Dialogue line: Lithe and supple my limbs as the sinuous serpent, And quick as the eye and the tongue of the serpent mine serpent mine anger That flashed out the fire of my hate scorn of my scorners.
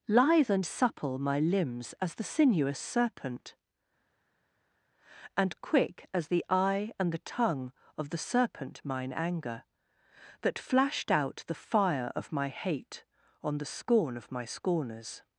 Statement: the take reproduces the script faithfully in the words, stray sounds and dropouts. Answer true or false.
false